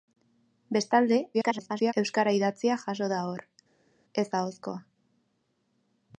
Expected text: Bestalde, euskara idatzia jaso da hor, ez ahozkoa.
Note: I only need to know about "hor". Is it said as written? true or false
true